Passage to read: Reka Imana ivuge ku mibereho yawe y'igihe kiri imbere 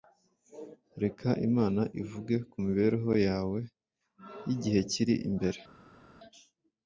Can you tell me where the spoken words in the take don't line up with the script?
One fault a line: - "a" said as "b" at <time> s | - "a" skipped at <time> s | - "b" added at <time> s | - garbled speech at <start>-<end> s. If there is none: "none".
none